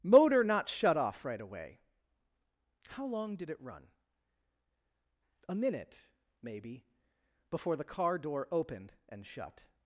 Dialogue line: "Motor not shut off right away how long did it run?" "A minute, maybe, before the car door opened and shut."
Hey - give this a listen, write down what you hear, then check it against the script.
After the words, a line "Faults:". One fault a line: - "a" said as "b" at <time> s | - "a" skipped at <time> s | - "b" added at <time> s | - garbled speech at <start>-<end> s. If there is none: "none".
"Motor not shut off right away how long did it run?" "A minute, maybe, before the car door opened and shut."
Faults:
none